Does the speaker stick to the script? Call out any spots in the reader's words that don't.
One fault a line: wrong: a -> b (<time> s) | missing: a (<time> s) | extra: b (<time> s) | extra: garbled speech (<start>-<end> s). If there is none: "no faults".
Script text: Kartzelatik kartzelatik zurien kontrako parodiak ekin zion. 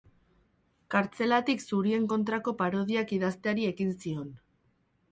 missing: kartzelatik (1.6 s)
extra: idazteari (3.2 s)